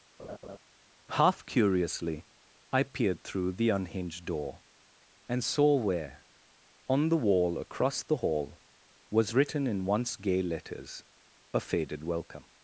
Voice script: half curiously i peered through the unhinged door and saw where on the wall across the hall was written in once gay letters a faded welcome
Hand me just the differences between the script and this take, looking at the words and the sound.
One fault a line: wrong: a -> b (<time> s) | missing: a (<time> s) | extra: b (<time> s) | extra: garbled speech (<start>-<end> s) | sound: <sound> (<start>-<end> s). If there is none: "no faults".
sound: laugh (0.2-0.6 s)